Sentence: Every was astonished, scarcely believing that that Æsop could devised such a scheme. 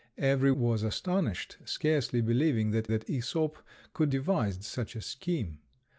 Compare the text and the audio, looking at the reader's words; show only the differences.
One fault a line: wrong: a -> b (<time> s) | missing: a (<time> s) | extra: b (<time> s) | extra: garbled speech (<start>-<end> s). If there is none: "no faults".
no faults